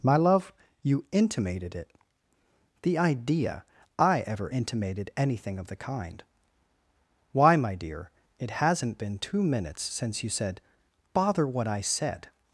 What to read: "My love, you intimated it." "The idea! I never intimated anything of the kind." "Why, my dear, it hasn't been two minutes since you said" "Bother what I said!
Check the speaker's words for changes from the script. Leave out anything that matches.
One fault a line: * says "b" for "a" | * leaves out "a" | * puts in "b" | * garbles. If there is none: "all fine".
* says "ever" for "never"